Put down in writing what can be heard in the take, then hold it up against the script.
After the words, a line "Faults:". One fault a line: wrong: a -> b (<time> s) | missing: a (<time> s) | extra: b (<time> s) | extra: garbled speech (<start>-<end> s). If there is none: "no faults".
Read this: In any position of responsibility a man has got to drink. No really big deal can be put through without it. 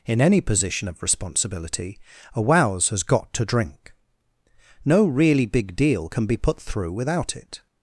In any position of responsibility a wows has got to drink. No really big deal can be put through without it.
Faults:
wrong: man -> wows (2.4 s)